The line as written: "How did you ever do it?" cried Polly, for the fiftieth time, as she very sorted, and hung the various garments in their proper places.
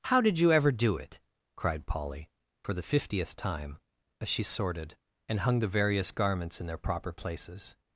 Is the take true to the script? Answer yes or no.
no